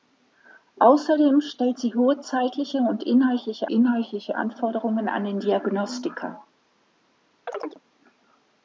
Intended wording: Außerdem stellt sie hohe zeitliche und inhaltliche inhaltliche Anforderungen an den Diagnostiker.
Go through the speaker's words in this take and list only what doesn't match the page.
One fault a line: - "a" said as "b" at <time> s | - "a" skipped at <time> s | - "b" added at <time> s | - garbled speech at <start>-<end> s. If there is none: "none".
none